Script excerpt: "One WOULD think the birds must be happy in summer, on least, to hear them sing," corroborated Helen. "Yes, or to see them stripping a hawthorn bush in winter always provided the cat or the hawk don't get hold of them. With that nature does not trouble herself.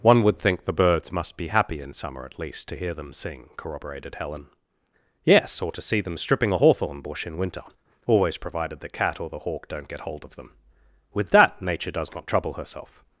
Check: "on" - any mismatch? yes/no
yes